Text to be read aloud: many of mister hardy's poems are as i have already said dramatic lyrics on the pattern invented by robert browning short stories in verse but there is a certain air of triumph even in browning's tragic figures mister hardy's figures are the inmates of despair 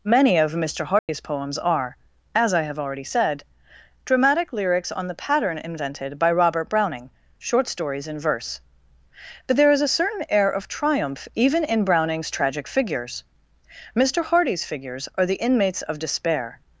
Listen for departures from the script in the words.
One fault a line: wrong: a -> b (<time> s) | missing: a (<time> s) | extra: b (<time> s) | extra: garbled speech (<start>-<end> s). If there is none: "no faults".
no faults